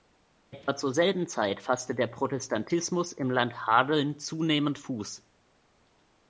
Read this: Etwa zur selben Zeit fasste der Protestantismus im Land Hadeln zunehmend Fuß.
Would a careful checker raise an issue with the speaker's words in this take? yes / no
no